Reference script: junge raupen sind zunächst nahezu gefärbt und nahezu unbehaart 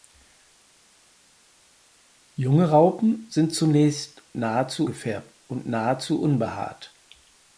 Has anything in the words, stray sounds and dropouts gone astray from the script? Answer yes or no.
no